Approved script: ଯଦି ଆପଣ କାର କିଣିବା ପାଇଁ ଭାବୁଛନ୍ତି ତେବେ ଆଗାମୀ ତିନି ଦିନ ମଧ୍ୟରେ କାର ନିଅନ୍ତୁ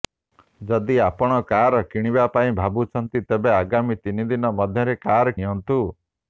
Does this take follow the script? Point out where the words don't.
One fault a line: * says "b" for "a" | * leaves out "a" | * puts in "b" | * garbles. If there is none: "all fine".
all fine